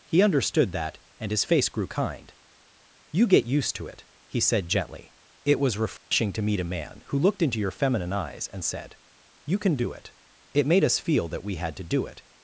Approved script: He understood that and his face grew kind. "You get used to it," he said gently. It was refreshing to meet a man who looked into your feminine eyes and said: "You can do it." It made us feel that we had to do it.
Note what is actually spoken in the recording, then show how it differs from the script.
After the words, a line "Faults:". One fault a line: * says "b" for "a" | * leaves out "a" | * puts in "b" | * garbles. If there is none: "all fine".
He understood that and his face grew kind. "You get used to it," he said gently. It was refreshing to meet a man who looked into your feminine eyes and said: "You can do it." It made us feel that we had to do it.
Faults:
all fine